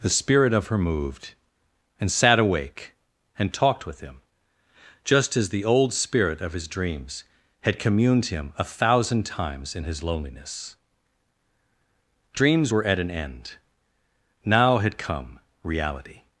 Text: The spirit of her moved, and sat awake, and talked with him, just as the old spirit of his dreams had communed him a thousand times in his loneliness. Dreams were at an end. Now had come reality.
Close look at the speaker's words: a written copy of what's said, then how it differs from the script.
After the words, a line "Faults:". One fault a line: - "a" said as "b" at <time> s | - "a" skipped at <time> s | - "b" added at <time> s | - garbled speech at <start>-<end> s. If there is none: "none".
The spirit of her moved, and sat awake, and talked with him, just as the old spirit of his dreams had communed him a thousand times in his loneliness. Dreams were at an end. Now had come reality.
Faults:
none